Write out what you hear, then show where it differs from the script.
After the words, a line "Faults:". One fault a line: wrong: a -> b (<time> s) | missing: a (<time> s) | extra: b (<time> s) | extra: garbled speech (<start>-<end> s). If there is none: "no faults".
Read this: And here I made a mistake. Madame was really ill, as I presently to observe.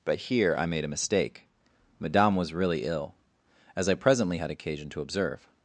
But here I made a mistake. Madame was really ill, as I presently had occasion to observe.
Faults:
wrong: And -> But (0.0 s)
extra: had occasion (4.4 s)